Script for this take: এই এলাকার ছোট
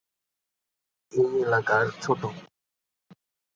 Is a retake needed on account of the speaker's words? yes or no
no